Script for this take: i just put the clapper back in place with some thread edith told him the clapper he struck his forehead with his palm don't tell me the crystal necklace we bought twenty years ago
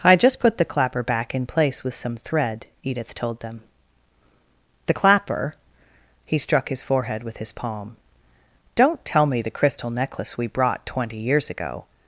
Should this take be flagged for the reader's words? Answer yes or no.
yes